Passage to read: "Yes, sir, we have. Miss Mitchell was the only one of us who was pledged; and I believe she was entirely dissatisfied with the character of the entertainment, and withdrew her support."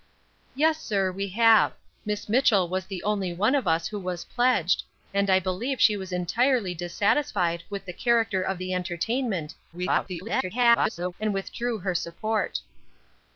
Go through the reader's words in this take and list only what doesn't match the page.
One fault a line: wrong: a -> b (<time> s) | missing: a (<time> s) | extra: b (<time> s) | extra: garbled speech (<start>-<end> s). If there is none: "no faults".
extra: garbled speech (9.7-11.1 s)